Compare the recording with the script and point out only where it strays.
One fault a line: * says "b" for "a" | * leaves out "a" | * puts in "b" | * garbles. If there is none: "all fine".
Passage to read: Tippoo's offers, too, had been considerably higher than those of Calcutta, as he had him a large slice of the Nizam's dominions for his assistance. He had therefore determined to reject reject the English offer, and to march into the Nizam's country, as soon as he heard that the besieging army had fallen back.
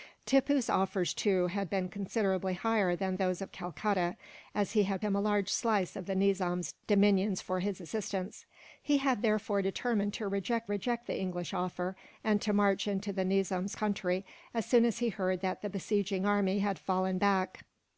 all fine